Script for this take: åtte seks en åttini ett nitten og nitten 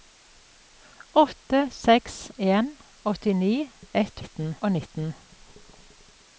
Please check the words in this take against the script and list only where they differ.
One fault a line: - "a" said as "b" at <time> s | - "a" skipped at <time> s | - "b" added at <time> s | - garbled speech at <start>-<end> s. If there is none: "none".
none